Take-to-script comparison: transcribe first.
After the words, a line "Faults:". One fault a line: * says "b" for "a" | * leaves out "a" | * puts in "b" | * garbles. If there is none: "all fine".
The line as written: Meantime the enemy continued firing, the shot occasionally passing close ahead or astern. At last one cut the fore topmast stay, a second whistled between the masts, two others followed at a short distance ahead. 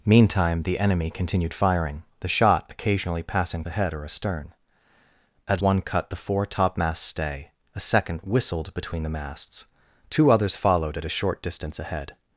Meantime the enemy continued firing, the shot occasionally passing ahead or astern. At one cut the fore topmast stay, a second whistled between the masts, two others followed at a short distance ahead.
Faults:
* leaves out "close"
* leaves out "last"